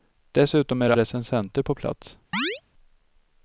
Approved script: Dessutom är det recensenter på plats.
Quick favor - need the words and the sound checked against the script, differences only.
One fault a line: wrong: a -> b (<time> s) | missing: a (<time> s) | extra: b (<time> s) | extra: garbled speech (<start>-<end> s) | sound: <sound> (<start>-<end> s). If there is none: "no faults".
sound: chirp (2.3-2.6 s)